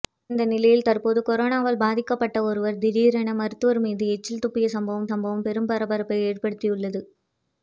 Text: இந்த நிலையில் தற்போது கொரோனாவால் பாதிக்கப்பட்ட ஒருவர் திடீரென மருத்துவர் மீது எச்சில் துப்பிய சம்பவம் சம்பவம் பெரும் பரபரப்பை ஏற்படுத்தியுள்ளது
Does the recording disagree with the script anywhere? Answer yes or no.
no